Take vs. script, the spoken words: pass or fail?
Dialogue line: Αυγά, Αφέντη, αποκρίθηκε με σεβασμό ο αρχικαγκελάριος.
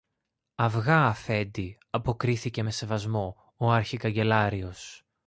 pass